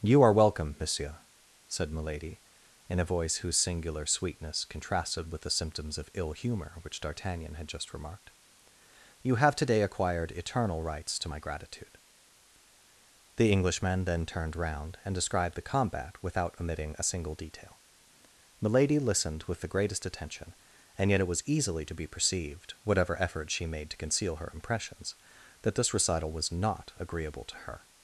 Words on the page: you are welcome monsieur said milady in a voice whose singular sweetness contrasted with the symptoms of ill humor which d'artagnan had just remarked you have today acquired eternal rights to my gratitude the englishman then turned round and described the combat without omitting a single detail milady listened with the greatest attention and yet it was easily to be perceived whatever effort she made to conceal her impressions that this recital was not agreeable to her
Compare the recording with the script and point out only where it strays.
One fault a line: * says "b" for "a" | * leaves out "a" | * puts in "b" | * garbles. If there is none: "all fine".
all fine